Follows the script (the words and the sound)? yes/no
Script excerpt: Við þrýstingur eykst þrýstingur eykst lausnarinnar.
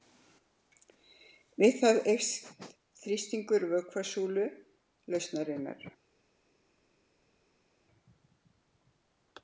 no